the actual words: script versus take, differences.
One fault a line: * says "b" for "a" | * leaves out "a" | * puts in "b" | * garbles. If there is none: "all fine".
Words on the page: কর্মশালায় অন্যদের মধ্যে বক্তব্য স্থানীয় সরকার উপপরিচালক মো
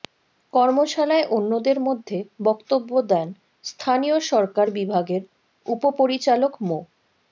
* puts in "দেন"
* puts in "বিভাগের"